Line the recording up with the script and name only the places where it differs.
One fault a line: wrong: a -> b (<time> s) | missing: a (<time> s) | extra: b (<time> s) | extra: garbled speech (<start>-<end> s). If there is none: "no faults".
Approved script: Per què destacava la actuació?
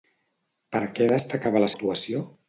no faults